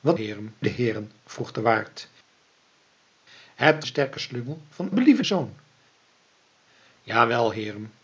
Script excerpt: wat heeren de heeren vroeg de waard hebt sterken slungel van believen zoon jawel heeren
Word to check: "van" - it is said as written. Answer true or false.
true